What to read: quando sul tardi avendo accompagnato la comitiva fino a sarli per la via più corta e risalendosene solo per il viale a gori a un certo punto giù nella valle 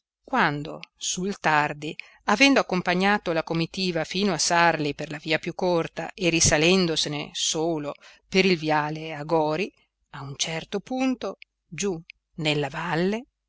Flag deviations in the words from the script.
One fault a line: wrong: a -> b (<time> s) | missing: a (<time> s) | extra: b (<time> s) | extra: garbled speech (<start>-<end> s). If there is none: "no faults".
no faults